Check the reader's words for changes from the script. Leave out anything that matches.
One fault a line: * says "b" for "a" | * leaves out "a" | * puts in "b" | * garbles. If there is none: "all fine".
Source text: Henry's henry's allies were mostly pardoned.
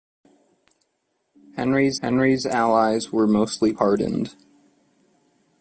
all fine